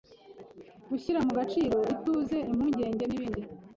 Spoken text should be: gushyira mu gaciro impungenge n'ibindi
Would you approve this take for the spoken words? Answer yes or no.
no